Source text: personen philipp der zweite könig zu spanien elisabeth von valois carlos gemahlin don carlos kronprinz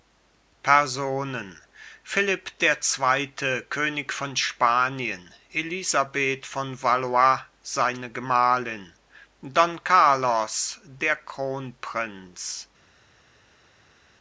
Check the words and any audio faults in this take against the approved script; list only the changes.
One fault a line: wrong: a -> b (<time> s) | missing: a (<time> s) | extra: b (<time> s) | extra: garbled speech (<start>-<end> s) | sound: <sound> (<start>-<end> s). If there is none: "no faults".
wrong: zu -> von (4.1 s)
wrong: carlos -> seine (7.6 s)
extra: der (10.9 s)